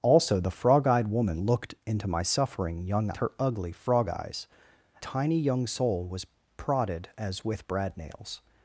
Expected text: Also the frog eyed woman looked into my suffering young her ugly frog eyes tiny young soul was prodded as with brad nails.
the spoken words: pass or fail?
pass